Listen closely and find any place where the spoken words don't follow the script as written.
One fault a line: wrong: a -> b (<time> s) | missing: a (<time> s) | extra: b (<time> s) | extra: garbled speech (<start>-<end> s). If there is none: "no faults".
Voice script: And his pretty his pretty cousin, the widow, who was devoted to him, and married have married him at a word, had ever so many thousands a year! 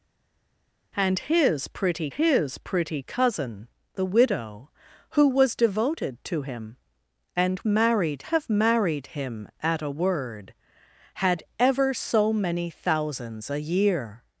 no faults